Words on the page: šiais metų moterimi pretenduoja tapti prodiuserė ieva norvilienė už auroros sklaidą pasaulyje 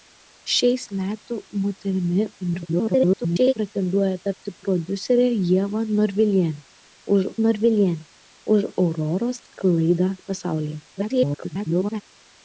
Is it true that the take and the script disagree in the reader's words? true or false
true